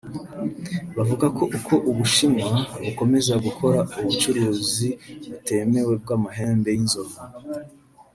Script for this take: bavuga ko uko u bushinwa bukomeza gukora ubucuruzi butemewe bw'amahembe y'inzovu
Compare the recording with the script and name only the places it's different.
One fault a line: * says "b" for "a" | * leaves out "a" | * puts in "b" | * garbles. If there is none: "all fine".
all fine